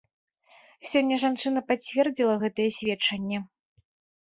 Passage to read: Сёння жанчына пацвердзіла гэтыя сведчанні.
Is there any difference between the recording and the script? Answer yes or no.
no